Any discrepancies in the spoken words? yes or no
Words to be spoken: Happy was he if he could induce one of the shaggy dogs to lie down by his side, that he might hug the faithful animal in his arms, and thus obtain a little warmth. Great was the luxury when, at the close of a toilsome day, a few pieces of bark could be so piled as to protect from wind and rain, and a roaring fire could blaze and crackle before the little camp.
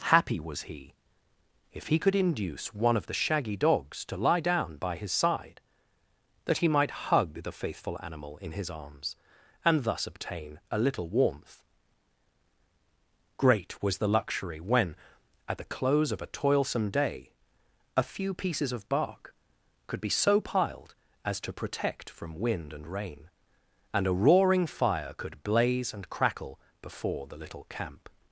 no